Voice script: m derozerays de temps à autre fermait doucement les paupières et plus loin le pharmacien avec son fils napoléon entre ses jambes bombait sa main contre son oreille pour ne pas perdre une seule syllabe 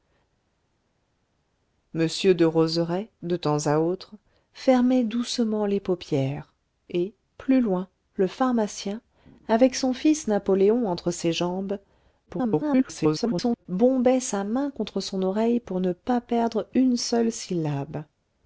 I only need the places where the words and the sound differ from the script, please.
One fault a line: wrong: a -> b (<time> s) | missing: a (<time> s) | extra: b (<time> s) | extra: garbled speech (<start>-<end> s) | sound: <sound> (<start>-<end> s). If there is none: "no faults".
extra: garbled speech (12.3-13.7 s)